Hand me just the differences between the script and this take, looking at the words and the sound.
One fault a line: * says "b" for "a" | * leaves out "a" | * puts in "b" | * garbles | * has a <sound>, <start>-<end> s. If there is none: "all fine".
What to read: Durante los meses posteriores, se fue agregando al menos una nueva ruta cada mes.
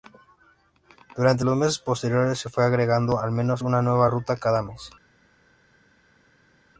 all fine